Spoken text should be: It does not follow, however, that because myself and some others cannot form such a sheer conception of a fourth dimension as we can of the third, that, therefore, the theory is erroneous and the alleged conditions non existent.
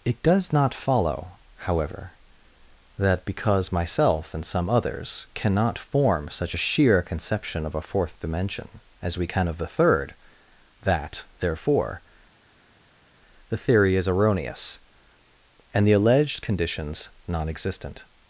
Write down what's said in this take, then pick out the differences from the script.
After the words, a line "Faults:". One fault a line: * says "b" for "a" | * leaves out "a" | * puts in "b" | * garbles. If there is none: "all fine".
It does not follow, however, that because myself and some others cannot form such a sheer conception of a fourth dimension as we can of the third, that, therefore, the theory is erroneous and the alleged conditions non existent.
Faults:
all fine